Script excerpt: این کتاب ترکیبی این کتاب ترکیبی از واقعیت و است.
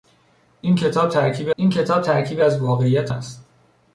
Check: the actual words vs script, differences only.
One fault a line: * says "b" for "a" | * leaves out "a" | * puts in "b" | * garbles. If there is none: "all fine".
all fine